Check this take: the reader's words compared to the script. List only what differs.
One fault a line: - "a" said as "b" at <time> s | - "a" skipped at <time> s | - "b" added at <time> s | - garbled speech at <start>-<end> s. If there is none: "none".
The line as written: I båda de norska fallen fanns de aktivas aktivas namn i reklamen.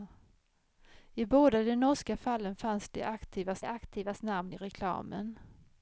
none